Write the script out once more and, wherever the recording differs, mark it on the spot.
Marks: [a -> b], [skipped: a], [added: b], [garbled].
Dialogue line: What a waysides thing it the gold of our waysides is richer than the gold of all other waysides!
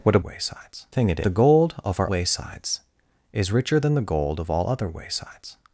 What a waysides thing it the gold of our waysides is richer than the gold of all other waysides!